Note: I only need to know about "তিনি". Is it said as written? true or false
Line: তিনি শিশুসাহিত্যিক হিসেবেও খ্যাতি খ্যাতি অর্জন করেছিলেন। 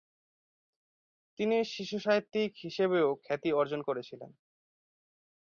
true